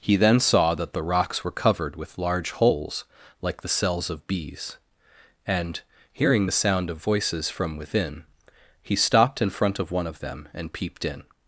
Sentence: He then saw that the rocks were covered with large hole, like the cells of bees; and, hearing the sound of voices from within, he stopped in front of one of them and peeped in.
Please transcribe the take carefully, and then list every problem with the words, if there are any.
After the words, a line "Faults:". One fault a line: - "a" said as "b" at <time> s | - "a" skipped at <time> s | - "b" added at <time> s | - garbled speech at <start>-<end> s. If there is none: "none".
He then saw that the rocks were covered with large holes, like the cells of bees; and, hearing the sound of voices from within, he stopped in front of one of them and peeped in.
Faults:
- "hole" said as "holes" at 2.5 s